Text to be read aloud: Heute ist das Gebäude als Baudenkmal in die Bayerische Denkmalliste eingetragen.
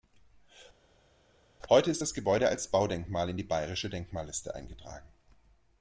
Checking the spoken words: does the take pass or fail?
pass